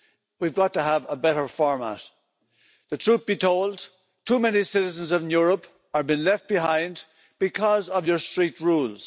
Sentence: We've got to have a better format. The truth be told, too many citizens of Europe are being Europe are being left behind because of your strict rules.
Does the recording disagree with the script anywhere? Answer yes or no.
yes